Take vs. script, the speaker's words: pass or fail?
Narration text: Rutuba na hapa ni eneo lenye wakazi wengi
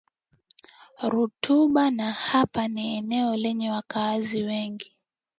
pass